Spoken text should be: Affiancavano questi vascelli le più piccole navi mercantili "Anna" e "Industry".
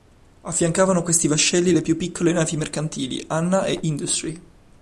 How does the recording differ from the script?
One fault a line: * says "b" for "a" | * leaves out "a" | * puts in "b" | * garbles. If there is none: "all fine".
all fine